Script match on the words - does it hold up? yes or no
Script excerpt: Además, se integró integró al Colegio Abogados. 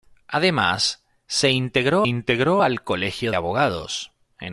yes